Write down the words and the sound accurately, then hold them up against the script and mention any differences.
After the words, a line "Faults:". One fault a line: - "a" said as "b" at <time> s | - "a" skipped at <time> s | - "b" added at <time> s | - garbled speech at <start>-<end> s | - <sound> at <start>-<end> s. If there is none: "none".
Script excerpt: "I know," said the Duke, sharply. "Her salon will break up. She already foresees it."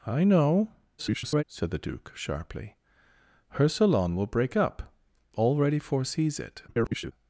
"I know," [garbled] said the Duke, sharply. "Her salon will break up. Already foresees it." [garbled]
Faults:
- garbled speech at 1.0-1.4 s
- "She" skipped at 4.9 s
- garbled speech at 6.7-7.1 s